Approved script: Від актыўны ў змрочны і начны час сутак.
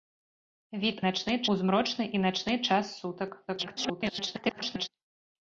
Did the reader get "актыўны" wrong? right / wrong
wrong